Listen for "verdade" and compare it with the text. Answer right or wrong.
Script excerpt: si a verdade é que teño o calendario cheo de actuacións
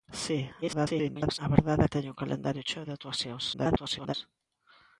right